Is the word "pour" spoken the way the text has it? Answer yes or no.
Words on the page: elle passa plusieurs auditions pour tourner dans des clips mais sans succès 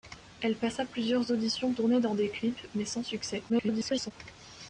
no